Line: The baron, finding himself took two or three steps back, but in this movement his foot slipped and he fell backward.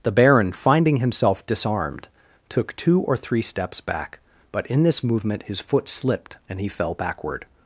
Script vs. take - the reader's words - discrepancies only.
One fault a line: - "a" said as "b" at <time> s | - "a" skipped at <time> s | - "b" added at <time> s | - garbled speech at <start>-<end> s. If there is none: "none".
- "disarmed" added at 1.4 s